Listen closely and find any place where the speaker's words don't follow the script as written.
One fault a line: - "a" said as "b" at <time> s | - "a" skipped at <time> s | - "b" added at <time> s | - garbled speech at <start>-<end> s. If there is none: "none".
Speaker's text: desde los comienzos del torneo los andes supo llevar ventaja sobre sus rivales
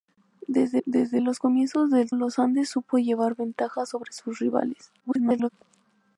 - "desde" added at 0.9 s
- "torneo" skipped at 2.1 s
- garbled speech at 5.0-5.5 s